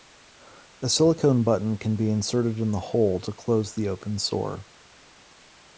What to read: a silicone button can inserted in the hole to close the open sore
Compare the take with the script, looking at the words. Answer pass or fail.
fail